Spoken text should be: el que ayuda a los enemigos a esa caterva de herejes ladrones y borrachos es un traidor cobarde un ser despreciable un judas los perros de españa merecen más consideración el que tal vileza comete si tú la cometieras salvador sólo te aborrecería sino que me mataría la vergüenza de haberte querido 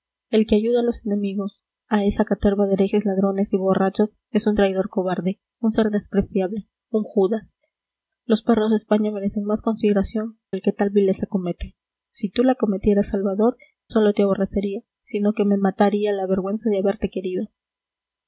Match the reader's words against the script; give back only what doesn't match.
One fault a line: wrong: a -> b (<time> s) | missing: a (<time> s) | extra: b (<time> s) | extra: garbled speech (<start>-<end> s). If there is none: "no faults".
no faults